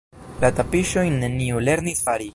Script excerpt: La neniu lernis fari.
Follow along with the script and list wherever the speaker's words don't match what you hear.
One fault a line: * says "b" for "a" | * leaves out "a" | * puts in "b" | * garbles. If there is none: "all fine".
* puts in "tapiŝojn"